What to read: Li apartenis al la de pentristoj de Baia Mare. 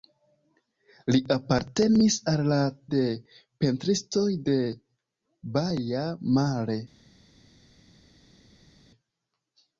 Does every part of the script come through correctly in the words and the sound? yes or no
yes